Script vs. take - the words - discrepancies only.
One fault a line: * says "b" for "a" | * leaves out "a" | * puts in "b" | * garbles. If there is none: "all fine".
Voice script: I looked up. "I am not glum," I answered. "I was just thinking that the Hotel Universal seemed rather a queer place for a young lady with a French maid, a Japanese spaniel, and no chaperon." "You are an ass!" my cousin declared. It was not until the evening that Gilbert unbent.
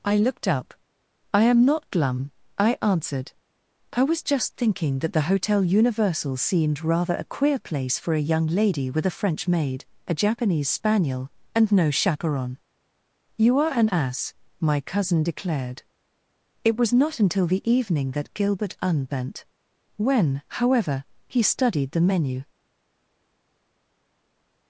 * puts in "When however he studied the menu"